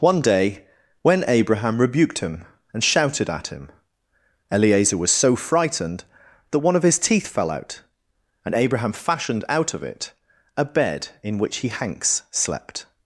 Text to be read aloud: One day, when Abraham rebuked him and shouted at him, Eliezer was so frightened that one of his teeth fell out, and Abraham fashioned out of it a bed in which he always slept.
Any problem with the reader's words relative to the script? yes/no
yes